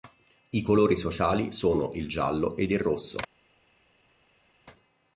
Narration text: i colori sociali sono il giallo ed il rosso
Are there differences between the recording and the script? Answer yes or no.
no